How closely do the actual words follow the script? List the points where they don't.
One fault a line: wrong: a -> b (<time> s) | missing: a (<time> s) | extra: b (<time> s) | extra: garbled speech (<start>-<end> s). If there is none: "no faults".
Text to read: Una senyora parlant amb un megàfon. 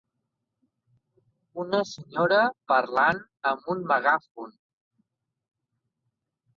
no faults